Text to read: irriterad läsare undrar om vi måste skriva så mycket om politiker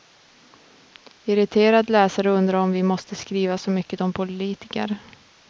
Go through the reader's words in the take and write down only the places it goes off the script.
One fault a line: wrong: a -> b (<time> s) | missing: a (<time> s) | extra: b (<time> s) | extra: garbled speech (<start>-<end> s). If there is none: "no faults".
no faults